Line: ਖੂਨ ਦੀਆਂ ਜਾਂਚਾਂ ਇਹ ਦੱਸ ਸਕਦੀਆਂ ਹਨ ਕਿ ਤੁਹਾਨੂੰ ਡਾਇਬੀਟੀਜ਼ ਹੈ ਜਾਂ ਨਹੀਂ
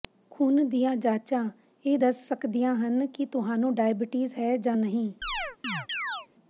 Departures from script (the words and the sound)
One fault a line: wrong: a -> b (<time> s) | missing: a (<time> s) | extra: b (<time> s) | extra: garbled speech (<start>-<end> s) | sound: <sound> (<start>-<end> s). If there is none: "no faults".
sound: chirp (5.2-6.3 s)